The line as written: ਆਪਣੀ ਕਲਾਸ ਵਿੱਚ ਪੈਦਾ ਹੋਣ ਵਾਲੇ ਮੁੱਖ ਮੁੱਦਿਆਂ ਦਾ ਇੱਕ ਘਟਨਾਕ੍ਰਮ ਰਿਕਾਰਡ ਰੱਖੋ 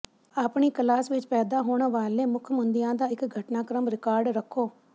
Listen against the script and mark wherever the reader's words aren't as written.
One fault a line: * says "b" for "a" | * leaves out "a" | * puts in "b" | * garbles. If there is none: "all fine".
all fine